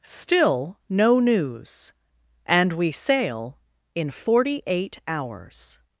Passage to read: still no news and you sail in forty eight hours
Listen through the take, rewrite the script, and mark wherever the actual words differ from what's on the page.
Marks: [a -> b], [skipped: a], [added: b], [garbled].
still no news and [you -> we] sail in forty eight hours